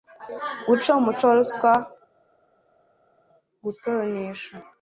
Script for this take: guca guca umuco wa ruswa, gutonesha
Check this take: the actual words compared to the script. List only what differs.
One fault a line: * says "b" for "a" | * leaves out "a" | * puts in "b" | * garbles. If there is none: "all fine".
* leaves out "guca"